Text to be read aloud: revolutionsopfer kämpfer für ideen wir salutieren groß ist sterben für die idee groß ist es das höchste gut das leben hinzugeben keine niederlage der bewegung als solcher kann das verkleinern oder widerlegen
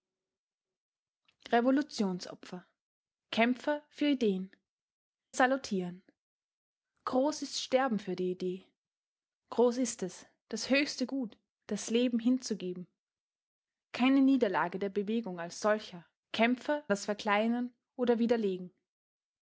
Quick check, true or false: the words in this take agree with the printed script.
false